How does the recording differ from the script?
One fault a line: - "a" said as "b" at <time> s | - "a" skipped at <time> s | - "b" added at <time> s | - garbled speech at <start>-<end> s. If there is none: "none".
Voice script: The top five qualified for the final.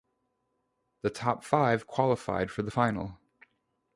none